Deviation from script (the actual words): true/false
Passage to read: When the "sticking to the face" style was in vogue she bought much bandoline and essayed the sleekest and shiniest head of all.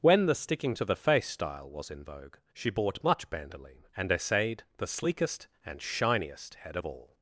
false